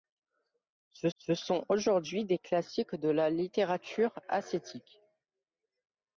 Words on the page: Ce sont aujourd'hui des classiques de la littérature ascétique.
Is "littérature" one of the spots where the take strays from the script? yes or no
no